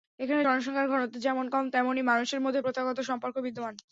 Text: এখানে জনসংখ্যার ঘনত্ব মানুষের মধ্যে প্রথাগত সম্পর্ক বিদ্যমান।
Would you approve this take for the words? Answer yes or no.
no